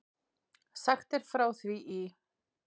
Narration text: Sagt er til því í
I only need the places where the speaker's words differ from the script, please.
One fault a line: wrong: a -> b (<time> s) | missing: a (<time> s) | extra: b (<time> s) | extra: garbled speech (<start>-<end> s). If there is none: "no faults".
wrong: til -> frá (1.3 s)